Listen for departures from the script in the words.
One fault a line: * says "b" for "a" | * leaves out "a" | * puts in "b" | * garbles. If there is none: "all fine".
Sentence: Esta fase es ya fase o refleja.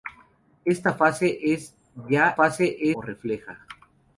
all fine